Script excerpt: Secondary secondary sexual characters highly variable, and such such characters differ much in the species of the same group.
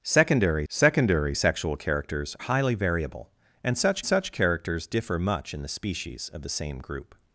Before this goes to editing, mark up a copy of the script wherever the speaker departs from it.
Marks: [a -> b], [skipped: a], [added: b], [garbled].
Secondary secondary sexual characters highly variable, and such such characters differ much in the species of the same group.